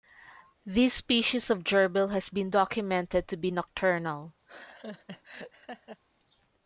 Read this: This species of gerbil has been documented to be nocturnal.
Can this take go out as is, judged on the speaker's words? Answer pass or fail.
pass